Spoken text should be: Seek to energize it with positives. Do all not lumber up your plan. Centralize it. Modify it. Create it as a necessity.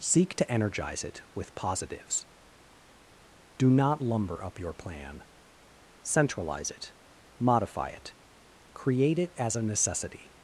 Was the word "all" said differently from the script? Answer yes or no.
yes